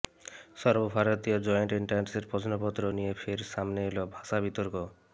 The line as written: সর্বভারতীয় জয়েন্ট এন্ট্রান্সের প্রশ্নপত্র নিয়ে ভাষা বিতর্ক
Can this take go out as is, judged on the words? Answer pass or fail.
fail